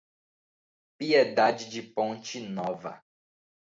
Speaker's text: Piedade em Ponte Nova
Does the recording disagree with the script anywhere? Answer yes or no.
yes